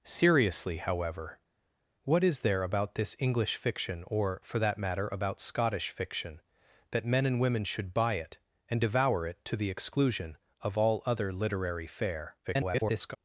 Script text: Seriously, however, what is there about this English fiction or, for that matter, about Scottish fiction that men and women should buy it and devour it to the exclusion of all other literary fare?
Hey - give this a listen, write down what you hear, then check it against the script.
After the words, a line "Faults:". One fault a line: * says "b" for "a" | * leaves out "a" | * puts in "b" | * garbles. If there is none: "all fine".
Seriously, however, what is there about this English fiction or, for that matter, about Scottish fiction that men and women should buy it and devour it to the exclusion of all other literary fare? [garbled]
Faults:
* garbles